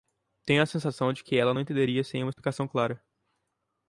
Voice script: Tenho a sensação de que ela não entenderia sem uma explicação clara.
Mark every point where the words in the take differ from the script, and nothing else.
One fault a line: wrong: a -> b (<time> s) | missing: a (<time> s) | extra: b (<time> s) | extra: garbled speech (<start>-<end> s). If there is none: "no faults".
no faults